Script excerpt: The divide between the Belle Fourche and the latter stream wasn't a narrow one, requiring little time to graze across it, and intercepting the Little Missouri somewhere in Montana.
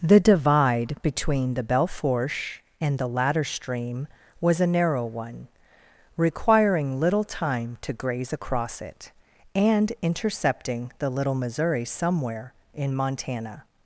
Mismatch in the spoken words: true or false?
true